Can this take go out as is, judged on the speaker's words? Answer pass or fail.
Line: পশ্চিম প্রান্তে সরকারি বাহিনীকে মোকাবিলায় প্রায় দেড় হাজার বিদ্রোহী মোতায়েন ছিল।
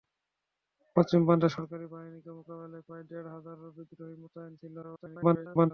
fail